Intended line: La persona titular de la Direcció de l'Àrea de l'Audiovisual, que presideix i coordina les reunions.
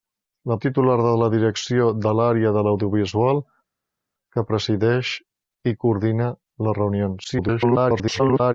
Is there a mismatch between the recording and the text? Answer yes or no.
yes